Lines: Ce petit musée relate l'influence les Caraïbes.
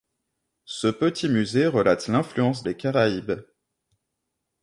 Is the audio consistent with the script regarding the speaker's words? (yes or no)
yes